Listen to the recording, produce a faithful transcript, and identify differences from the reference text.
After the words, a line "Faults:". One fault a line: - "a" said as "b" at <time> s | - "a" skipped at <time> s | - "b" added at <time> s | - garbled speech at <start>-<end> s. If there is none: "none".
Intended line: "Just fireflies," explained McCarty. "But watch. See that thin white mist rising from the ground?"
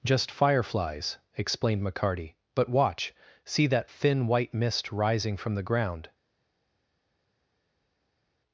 "Just fireflies," explained McCarty. "But watch. See that thin white mist rising from the ground?"
Faults:
none